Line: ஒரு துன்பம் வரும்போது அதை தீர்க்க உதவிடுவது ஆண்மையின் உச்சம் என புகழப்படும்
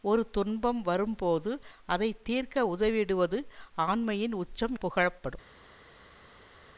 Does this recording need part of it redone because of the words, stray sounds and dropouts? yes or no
yes